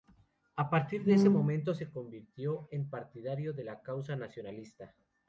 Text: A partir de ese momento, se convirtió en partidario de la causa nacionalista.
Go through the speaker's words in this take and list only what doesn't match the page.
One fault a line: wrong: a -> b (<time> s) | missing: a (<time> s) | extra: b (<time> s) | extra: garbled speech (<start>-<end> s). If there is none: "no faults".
no faults